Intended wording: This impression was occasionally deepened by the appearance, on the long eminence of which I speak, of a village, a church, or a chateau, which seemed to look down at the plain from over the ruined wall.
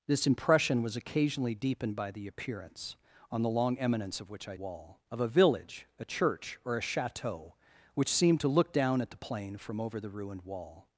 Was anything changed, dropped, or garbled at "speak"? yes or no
yes